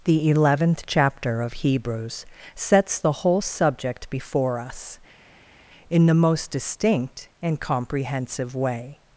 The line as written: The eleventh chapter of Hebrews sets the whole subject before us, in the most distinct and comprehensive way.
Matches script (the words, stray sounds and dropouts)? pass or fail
pass